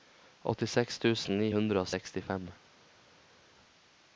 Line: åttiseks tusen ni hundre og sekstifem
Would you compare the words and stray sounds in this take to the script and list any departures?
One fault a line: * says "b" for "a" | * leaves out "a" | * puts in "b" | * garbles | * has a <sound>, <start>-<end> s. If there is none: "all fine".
all fine